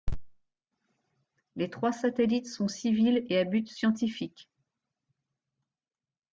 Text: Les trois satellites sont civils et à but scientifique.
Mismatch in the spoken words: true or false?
false